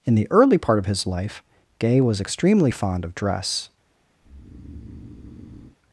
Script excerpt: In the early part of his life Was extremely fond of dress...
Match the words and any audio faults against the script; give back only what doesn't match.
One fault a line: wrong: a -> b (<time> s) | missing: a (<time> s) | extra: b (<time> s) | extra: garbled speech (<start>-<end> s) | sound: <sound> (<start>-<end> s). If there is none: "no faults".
extra: Gay (1.8 s)
sound: breath (4.2-5.8 s)